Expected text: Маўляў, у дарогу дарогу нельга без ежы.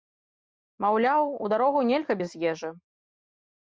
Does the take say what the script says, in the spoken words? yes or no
no